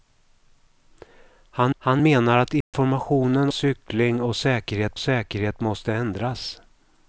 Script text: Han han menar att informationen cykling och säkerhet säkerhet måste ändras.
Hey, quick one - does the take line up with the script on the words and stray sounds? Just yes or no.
no